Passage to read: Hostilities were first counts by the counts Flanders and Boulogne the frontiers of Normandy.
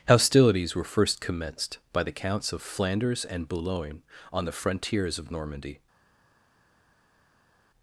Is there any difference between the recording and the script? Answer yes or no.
yes